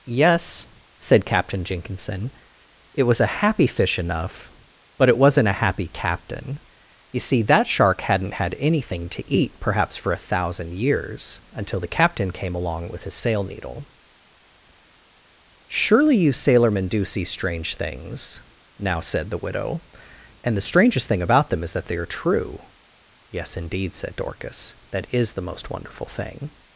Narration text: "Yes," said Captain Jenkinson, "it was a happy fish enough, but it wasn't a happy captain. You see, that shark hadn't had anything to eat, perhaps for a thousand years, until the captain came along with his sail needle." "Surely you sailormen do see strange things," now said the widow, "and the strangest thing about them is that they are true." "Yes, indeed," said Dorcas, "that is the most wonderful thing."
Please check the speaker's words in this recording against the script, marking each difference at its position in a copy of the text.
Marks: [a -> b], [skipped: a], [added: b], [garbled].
"Yes," said Captain Jenkinson, "it was a happy fish enough, but it wasn't a happy captain. You see, that shark hadn't had anything to eat, perhaps for a thousand years, until the captain came along with his sail needle." "Surely you sailormen do see strange things," now said the widow, "and the strangest thing about them is that they are true." "Yes, indeed," said Dorcas, "that is the most wonderful thing."